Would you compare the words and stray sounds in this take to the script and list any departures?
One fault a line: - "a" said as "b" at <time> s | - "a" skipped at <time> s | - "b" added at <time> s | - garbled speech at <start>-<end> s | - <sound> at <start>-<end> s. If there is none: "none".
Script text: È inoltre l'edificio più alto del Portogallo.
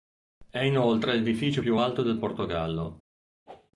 - whoosh at 3.5-3.7 s